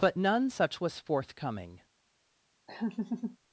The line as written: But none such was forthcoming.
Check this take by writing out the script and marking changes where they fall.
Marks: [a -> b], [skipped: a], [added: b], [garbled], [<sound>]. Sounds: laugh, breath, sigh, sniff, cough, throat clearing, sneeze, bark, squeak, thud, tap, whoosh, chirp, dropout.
But none such was forthcoming. [laugh]